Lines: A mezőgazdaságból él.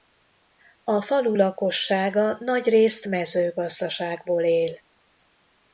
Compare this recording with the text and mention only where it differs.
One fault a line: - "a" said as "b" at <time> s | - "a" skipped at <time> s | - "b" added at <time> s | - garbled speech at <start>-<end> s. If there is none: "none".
- "falu lakossága nagyrészt" added at 1.0 s